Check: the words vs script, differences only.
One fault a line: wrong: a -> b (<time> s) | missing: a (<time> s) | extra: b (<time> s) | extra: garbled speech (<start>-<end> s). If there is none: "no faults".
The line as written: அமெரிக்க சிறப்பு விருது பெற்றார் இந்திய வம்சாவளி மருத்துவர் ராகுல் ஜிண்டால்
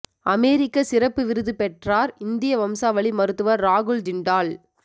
no faults